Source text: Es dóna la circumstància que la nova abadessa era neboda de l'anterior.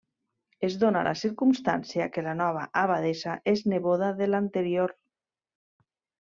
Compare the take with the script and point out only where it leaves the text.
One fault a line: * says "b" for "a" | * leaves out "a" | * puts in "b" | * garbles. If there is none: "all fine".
* says "és" for "era"